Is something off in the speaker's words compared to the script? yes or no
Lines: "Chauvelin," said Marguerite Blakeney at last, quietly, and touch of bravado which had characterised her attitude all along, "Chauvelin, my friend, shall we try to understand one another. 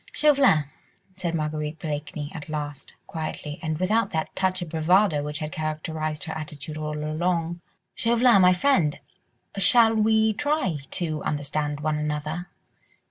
yes